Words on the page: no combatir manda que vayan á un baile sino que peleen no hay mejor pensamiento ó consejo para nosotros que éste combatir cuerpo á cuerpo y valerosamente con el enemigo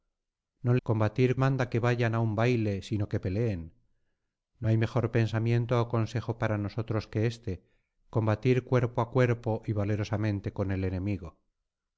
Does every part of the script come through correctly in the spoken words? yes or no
yes